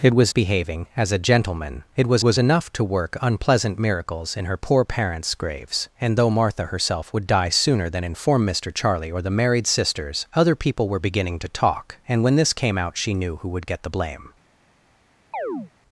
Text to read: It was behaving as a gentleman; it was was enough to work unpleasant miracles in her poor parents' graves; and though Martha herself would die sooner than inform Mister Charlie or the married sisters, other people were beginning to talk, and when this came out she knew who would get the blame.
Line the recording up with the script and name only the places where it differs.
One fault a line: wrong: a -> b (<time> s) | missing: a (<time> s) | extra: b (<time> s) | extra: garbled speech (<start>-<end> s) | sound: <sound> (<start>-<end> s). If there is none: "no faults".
sound: chirp (15.3-15.7 s)